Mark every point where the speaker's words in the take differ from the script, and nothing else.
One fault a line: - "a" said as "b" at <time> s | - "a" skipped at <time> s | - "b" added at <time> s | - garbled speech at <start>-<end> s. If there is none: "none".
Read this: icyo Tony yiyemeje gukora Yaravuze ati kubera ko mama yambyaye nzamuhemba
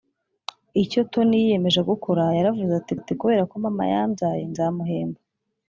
- "ati" added at 3.0 s